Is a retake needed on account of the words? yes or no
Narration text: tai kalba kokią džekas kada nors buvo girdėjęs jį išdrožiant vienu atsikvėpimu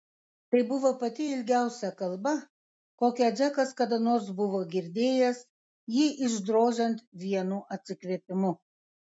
yes